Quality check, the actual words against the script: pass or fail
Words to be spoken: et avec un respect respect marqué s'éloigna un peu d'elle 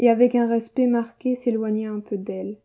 fail